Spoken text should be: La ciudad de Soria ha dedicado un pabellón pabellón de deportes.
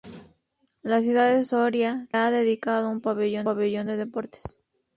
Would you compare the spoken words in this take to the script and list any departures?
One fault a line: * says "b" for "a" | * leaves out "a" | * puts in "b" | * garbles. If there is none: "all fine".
all fine